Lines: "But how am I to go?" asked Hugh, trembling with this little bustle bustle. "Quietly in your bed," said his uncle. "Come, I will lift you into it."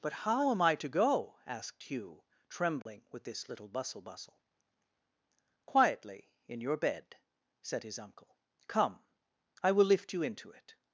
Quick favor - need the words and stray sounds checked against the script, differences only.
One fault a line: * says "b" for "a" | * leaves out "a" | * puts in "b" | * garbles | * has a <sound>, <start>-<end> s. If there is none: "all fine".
* has a dropout, 2.8-2.9 s